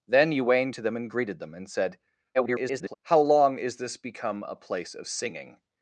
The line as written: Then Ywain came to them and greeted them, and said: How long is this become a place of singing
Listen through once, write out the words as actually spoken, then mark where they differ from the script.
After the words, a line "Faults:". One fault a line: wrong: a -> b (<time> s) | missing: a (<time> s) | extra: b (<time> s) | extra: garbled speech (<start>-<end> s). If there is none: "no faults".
Then Ywain to them and greeted them, and said: [garbled] How long is this become a place of singing
Faults:
missing: came (0.7 s)
extra: garbled speech (2.3-2.9 s)